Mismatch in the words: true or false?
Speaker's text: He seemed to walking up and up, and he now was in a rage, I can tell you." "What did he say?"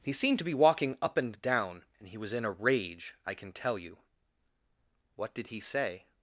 true